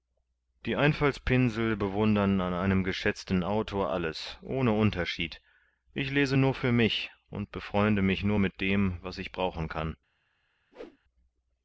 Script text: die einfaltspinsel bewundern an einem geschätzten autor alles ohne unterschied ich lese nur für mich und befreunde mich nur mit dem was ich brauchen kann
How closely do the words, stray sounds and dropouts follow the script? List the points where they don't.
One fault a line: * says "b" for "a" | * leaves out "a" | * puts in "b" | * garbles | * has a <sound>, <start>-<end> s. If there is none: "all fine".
* has a whoosh, 10.7-11.0 s